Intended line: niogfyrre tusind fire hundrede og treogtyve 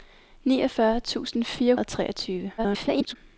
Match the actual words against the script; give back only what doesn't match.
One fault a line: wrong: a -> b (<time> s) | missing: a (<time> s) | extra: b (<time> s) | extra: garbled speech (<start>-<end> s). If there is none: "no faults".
missing: hundrede (1.8 s)
extra: garbled speech (2.6-3.2 s)